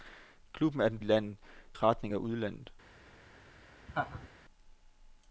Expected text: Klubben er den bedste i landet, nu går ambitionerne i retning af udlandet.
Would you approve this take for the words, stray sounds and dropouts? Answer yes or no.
no